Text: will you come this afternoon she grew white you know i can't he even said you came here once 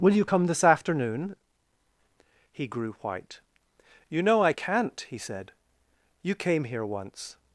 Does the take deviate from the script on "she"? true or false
true